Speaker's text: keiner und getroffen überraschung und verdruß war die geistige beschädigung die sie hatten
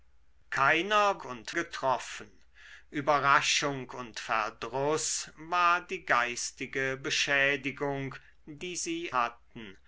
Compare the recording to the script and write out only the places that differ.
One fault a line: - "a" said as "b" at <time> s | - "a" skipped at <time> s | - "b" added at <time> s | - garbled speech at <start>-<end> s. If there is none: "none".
none